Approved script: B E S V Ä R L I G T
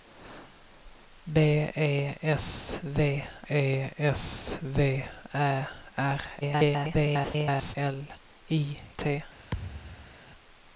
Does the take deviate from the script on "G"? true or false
true